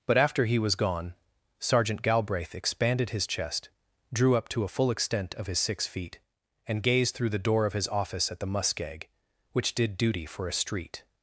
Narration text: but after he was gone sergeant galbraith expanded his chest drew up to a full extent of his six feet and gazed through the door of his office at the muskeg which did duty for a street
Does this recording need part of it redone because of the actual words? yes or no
no